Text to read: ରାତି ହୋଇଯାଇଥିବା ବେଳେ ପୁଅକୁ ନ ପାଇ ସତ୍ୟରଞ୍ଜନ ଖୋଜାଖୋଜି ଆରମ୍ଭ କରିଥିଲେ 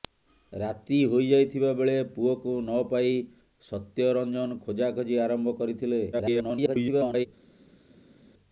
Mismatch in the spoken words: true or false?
true